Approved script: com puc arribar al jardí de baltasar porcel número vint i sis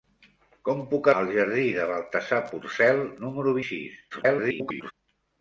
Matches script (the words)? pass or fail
fail